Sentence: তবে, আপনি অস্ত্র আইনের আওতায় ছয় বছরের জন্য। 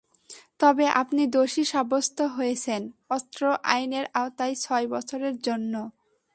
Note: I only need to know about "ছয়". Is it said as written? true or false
true